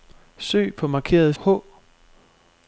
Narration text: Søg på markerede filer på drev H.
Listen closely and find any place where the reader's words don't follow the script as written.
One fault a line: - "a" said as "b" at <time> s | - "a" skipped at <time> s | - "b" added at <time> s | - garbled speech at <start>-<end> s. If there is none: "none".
- "filer på drev" skipped at 1.3 s